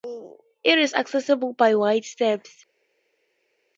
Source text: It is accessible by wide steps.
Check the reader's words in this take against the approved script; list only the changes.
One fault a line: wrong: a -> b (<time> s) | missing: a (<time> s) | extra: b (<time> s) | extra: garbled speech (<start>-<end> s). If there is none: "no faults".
no faults